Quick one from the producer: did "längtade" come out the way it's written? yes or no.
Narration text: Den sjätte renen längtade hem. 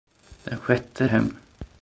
no